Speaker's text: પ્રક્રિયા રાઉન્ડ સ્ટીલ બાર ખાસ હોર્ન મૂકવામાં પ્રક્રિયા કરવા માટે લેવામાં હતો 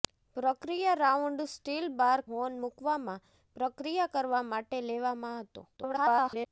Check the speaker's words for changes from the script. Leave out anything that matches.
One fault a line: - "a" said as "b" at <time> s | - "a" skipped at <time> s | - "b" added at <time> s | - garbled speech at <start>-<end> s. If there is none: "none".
- "ખાસ" skipped at 2.2 s
- garbled speech at 5.8-6.5 s